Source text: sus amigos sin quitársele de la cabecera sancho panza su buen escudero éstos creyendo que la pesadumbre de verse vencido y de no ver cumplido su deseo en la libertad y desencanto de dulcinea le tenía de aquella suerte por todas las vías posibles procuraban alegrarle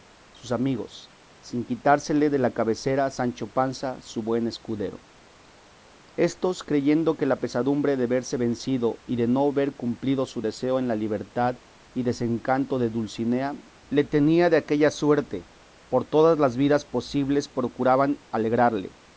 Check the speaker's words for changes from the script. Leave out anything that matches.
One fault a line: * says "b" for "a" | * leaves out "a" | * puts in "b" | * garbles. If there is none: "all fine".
all fine